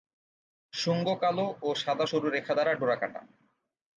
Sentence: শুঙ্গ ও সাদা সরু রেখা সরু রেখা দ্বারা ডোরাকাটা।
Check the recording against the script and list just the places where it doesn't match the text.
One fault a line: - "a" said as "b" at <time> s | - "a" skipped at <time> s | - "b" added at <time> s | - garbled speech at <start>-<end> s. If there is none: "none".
- "কালো" added at 1.2 s
- "সরু রেখা" skipped at 2.5 s